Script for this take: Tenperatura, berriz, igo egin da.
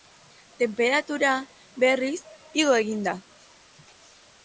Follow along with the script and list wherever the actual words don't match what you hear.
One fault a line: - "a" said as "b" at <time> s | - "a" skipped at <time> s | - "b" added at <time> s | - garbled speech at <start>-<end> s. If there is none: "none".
none